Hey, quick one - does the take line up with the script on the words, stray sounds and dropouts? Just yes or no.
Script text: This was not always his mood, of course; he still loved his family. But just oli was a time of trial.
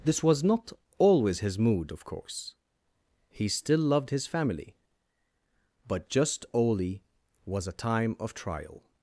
yes